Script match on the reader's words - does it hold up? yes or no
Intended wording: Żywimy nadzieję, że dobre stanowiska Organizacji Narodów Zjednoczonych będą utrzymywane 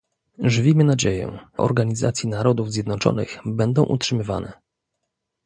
no